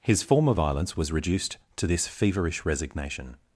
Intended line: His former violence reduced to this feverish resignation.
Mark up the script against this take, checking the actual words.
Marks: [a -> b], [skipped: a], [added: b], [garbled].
His former violence [added: was] reduced to this feverish resignation.